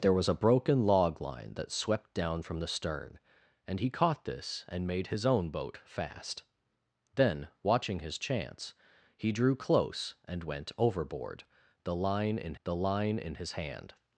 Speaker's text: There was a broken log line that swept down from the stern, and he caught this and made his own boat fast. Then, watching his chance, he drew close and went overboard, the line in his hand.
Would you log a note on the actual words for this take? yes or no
yes